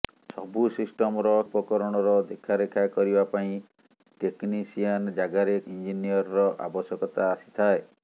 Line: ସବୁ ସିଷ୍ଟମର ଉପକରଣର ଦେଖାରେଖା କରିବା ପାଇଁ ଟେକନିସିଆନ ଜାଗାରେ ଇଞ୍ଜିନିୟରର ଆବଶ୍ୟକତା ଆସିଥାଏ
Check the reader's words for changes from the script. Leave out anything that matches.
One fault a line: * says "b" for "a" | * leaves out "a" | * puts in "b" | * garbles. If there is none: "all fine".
all fine